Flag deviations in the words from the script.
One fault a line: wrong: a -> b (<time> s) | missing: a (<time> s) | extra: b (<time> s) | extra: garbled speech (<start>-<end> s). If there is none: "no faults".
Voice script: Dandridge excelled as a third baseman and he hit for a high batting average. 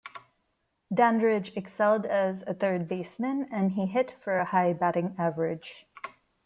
no faults